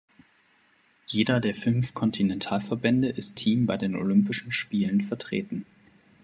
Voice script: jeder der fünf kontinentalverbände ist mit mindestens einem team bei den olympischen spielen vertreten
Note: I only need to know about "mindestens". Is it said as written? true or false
false